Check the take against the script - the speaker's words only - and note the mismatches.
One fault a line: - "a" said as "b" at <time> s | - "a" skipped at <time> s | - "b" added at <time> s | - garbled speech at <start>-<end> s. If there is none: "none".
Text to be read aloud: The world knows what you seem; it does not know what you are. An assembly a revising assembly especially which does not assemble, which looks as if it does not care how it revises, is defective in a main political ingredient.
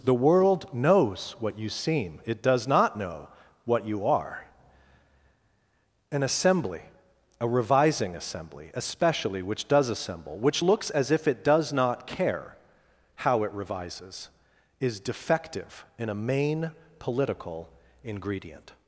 - "not" skipped at 9.9 s